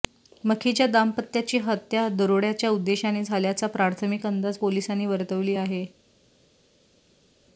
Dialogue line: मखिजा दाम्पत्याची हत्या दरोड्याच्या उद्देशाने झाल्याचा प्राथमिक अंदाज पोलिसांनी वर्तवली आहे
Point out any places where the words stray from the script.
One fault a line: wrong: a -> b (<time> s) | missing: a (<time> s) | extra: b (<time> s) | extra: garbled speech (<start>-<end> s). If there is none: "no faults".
no faults